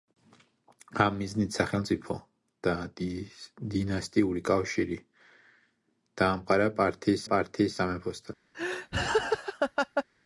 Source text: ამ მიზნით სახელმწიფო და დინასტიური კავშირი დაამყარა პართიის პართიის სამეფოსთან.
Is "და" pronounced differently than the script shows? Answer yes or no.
no